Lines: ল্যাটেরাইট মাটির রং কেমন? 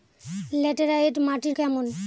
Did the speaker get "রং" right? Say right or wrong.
wrong